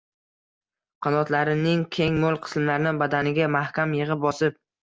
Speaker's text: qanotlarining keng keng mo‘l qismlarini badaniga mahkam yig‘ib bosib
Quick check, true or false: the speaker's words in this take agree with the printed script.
false